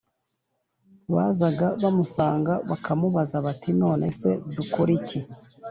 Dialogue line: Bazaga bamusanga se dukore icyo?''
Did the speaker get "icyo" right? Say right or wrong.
wrong